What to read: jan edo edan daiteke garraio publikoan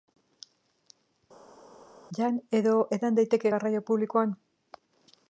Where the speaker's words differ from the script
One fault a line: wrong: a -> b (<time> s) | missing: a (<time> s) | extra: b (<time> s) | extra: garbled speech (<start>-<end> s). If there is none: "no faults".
no faults